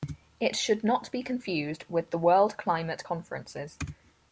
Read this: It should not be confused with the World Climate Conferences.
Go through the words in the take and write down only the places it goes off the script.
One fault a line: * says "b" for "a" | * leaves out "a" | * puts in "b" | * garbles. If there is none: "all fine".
all fine